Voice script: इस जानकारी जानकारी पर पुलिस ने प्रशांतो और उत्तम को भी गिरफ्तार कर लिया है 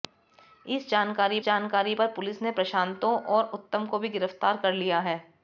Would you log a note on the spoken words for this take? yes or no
no